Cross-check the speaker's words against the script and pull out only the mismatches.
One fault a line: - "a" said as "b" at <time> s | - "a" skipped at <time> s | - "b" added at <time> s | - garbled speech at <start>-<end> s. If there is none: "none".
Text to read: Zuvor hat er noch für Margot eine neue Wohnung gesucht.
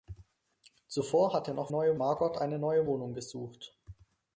- "für" said as "neue" at 1.7 s